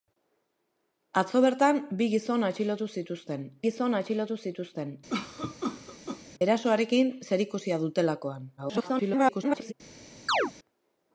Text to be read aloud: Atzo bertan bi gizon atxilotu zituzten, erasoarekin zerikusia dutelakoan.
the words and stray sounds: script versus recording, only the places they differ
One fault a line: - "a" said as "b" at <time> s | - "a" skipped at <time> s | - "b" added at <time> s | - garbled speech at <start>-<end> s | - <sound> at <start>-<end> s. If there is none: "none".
- "gizon atxilotu zituzten" added at 3.6 s
- cough at 5.1-6.2 s
- garbled speech at 8.6-9.7 s
- chirp at 10.3-10.5 s